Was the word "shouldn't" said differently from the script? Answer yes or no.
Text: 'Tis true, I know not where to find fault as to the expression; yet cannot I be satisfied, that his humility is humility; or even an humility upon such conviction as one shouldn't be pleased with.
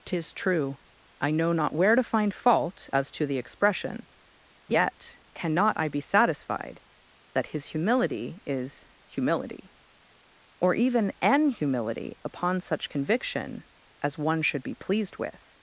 yes